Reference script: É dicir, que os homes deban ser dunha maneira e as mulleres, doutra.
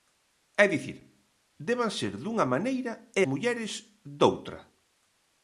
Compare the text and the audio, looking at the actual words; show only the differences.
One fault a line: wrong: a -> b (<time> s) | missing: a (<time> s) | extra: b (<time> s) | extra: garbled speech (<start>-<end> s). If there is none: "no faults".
missing: que os homes (1.0 s)
missing: as (3.2 s)